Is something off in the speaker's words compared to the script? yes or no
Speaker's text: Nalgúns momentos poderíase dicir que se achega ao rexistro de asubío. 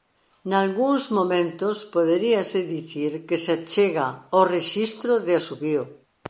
no